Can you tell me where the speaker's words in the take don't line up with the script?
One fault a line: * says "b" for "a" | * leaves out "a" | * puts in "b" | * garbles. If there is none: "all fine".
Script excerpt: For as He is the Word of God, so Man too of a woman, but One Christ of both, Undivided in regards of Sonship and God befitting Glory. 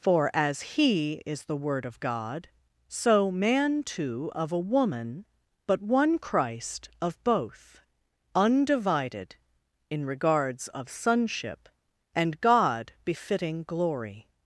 all fine